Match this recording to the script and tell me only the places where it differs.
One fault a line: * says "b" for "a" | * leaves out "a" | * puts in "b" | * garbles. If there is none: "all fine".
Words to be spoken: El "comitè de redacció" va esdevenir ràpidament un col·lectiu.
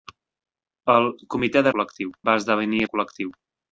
* says "col·lectiu" for "redacció"
* leaves out "ràpidament"